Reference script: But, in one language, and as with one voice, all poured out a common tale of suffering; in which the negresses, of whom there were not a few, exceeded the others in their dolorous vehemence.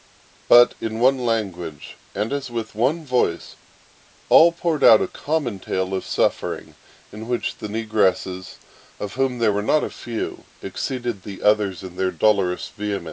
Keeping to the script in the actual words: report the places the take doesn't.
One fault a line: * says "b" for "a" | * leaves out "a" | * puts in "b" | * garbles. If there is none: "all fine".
all fine